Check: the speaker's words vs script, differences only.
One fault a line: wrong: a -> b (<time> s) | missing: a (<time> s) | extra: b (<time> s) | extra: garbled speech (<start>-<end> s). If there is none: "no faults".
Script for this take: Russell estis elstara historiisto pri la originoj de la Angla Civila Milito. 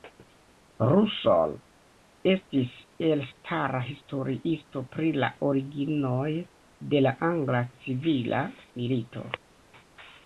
no faults